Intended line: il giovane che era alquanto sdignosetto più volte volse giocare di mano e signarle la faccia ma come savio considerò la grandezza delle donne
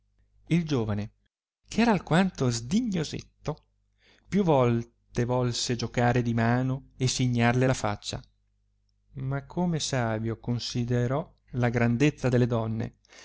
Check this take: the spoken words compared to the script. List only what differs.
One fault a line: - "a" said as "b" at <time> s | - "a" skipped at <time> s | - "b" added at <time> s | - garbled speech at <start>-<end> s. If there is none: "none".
none